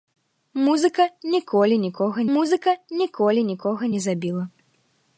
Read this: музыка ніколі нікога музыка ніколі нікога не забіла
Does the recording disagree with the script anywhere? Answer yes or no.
no